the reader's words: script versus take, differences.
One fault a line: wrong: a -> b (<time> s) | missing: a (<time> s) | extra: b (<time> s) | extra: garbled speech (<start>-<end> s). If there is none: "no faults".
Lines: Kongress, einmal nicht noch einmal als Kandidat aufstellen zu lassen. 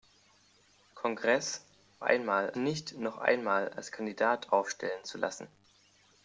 no faults